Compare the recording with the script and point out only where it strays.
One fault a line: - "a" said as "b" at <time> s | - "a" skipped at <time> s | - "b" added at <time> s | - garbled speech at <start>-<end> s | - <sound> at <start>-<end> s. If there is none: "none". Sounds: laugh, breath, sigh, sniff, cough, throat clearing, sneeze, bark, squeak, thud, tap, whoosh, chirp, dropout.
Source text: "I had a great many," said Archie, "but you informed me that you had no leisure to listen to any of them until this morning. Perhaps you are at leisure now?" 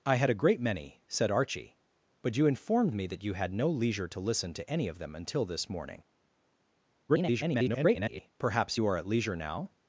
- garbled speech at 7.1-8.3 s